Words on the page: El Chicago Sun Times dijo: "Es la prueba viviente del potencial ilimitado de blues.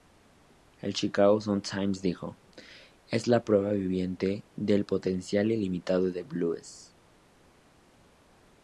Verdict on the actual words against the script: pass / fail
pass